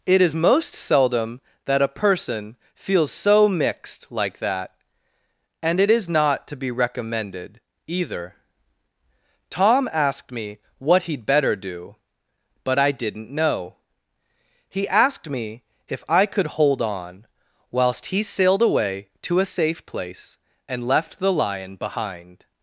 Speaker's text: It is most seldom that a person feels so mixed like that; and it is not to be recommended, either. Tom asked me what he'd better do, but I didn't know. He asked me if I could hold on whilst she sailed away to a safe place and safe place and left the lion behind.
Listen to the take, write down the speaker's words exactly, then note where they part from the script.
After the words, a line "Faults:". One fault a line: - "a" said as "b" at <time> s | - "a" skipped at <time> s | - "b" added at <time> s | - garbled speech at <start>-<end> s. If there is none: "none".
It is most seldom that a person feels so mixed like that; and it is not to be recommended, either. Tom asked me what he'd better do, but I didn't know. He asked me if I could hold on whilst he sailed away to a safe place and left the lion behind.
Faults:
- "she" said as "he" at 18.1 s
- "safe place and" skipped at 20.9 s